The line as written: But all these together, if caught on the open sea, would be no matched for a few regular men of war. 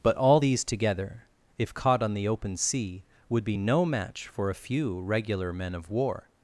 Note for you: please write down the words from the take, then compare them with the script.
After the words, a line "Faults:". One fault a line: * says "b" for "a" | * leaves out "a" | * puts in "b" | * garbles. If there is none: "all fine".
But all these together, if caught on the open sea, would be no match for a few regular men of war.
Faults:
* says "match" for "matched"